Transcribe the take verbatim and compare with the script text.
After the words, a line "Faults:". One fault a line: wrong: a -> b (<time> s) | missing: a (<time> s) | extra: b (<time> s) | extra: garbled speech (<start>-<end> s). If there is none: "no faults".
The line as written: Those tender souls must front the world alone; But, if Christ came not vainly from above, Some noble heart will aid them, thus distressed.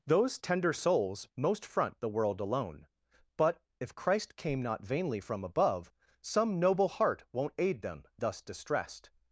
Those tender souls most front the world alone; But, if Christ came not vainly from above, Some noble heart won't aid them, thus distressed.
Faults:
wrong: must -> most (1.4 s)
wrong: will -> won't (7.3 s)